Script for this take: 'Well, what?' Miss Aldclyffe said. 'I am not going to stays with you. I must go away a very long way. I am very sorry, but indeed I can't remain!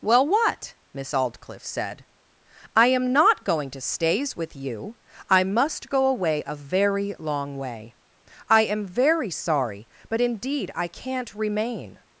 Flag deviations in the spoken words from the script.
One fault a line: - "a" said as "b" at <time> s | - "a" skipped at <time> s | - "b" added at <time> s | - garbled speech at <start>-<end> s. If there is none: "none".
none